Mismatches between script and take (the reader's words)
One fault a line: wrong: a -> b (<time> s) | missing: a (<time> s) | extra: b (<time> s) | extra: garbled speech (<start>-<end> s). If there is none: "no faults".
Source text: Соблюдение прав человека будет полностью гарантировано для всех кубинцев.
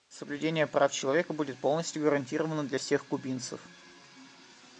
no faults